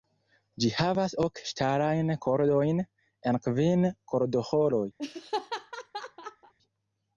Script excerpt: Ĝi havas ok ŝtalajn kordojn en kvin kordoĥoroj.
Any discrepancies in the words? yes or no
no